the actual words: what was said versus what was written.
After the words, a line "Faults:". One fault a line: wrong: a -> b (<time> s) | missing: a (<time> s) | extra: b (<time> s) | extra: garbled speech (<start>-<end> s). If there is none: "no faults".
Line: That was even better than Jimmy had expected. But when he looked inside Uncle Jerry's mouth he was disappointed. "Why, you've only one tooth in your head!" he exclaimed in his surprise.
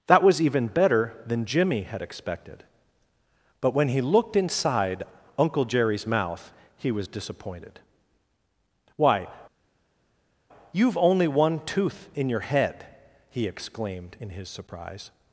That was even better than Jimmy had expected. But when he looked inside Uncle Jerry's mouth he was disappointed. "Why, you've only one tooth in your head!" he exclaimed in his surprise.
Faults:
no faults